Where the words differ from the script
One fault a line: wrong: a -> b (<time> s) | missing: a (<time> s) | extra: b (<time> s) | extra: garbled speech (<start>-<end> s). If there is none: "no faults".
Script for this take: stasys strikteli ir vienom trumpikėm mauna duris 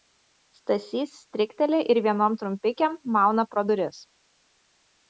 extra: pro (3.5 s)